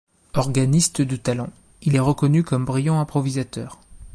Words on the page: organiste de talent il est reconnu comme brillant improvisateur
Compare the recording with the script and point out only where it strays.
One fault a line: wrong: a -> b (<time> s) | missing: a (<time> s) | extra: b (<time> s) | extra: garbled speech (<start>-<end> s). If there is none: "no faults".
no faults